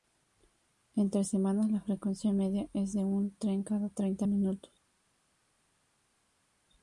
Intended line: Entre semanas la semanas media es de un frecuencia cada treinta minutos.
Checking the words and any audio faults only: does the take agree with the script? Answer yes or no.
no